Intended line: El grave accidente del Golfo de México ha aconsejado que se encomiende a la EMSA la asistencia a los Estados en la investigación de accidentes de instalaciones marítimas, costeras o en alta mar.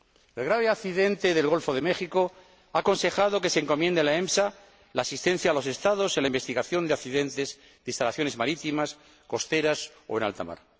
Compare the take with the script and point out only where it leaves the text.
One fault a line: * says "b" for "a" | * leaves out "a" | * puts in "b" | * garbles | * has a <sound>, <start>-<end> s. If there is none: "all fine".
all fine